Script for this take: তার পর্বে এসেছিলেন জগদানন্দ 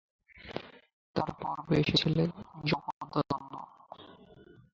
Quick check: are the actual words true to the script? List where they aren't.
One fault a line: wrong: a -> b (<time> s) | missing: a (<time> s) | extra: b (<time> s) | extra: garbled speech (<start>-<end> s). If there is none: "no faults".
no faults